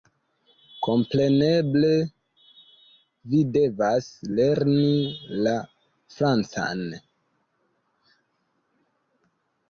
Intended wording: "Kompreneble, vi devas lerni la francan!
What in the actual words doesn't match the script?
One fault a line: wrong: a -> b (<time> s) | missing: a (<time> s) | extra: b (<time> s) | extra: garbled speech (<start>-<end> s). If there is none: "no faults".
no faults